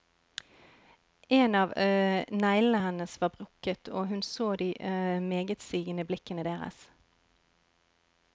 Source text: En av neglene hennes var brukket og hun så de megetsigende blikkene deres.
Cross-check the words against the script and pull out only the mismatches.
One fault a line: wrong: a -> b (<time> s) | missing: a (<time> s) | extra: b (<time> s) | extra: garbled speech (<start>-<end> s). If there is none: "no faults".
no faults